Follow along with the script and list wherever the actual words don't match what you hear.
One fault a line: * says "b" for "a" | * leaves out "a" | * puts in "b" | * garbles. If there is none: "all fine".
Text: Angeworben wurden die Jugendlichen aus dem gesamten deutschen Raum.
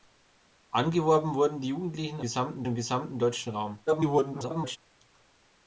* says "gesamten" for "aus"
* garbles